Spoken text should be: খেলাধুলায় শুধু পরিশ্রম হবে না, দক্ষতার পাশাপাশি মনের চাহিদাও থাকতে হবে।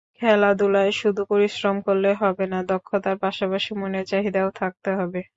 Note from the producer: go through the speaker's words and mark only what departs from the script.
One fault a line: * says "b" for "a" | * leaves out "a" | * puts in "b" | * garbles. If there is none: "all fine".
* puts in "করলে"